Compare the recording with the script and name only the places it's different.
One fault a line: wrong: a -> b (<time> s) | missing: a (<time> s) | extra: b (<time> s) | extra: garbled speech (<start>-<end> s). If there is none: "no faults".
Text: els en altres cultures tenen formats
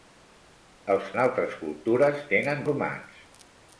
no faults